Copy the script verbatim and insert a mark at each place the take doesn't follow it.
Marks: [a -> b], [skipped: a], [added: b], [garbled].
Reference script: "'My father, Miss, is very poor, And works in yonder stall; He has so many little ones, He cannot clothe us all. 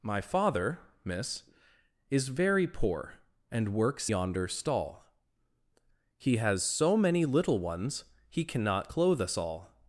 "'My father, Miss, is very poor, And works [skipped: in] yonder stall; He has so many little ones, He cannot clothe us all.